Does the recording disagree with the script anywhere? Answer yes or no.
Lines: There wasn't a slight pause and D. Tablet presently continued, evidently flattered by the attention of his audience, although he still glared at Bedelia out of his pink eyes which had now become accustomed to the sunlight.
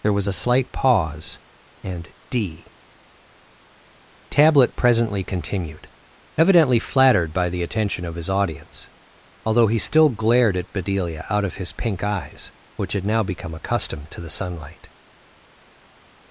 yes